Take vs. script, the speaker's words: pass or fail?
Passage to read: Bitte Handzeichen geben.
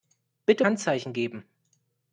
pass